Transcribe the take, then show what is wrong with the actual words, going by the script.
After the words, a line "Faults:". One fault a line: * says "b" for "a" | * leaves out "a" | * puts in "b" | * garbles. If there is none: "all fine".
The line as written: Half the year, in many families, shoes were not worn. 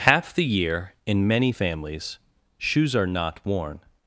Half the year, in many families, shoes are not worn.
Faults:
* says "are" for "were"